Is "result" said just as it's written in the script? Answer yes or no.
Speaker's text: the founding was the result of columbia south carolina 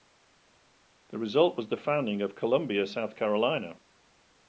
no